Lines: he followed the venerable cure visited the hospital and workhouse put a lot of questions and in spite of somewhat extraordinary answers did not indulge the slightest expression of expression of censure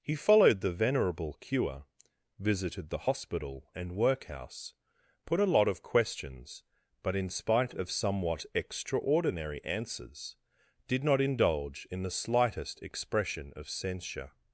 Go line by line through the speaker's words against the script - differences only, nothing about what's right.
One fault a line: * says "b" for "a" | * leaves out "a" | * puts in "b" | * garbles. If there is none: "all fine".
* says "but" for "and"
* puts in "in"
* leaves out "expression of"